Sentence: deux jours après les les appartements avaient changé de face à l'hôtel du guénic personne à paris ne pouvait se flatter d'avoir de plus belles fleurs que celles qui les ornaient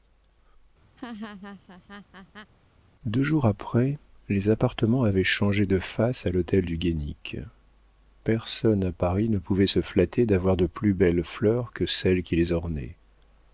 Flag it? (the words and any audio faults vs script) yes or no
yes